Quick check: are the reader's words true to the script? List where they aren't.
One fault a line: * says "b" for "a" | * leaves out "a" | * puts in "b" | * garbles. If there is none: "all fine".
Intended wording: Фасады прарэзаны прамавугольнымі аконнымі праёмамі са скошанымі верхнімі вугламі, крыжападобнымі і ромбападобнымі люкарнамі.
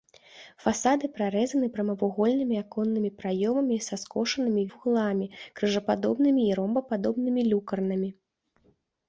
* leaves out "верхнімі"